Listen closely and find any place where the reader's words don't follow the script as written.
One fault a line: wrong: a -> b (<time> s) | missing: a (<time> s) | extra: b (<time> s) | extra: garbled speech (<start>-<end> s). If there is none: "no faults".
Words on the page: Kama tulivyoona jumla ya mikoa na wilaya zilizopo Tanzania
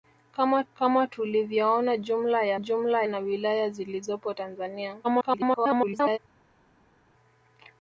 extra: kama (0.7 s)
wrong: mikoa -> jumla (2.6 s)
extra: garbled speech (5.0-6.2 s)